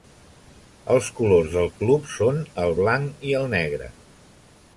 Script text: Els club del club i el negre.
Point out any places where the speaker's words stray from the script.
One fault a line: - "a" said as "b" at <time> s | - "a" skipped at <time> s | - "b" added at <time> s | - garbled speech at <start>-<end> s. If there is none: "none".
- "club" said as "colors" at 1.2 s
- "són el blanc" added at 2.1 s